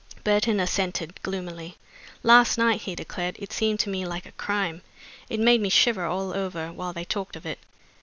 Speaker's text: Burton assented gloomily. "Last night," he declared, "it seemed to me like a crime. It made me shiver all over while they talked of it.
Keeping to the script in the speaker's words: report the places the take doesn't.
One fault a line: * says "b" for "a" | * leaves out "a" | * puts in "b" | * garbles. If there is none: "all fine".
all fine